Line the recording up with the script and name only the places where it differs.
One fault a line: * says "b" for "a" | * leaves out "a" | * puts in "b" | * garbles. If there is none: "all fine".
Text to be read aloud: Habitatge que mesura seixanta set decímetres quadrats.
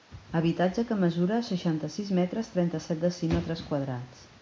* puts in "sis metres trenta"